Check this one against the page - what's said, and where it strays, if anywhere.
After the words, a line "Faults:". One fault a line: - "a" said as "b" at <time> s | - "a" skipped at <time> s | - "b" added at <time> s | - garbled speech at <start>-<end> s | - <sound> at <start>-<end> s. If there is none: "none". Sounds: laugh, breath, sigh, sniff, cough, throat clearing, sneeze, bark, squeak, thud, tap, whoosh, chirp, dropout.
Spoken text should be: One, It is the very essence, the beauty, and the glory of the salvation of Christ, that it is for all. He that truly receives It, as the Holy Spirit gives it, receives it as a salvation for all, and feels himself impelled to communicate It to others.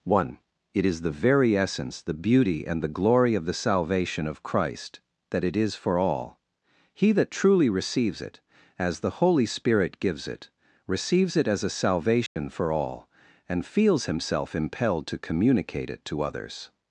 One, It is the very essence, the beauty, and the glory of the salvation of Christ, that it is for all. He that truly receives It, as the Holy Spirit gives it, receives it as a salvation for all, and feels himself impelled to communicate It to others.
Faults:
- dropout at 12.3-12.4 s